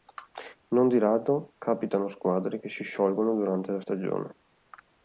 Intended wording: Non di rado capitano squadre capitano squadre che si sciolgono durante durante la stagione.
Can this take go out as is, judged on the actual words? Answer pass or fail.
fail